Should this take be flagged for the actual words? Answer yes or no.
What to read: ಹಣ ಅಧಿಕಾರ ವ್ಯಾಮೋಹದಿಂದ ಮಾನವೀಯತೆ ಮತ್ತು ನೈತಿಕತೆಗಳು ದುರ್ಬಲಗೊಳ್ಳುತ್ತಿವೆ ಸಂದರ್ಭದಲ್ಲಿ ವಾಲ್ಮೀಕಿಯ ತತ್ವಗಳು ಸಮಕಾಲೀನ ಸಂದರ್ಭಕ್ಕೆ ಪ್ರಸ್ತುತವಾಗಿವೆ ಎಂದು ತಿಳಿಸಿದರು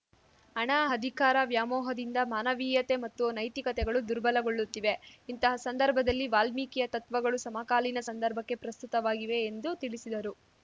yes